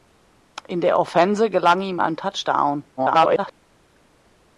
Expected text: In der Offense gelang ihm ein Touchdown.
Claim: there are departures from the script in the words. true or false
true